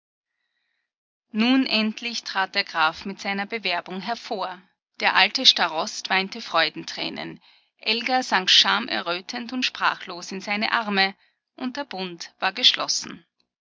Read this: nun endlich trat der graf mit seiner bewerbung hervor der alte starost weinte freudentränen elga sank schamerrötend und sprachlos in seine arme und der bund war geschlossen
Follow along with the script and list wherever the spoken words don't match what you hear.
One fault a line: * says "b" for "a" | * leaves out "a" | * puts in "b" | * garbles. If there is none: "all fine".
all fine